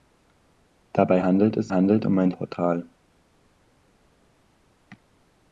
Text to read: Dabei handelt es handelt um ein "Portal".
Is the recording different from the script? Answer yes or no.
no